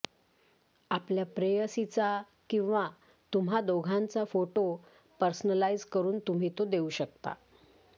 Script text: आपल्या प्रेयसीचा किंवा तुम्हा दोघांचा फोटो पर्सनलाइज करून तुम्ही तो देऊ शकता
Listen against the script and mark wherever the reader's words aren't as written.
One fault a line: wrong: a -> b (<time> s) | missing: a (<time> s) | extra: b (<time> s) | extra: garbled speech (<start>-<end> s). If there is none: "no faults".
no faults